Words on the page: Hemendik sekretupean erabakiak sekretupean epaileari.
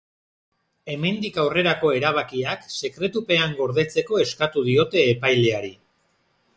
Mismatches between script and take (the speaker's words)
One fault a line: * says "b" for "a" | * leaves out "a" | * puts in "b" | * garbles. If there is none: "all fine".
* says "aurrerako" for "sekretupean"
* puts in "gordetzeko eskatu diote"